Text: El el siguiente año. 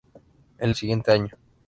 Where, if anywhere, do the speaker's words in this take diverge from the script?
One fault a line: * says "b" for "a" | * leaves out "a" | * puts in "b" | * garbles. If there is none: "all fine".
all fine